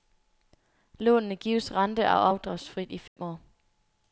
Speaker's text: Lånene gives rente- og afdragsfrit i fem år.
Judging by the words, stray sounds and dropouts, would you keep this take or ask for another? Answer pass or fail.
fail